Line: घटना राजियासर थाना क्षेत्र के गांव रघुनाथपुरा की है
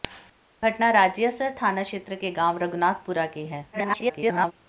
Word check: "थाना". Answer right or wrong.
right